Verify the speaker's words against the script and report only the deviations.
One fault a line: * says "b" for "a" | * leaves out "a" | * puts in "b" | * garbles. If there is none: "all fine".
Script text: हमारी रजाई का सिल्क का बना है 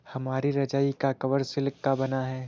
* puts in "कवर"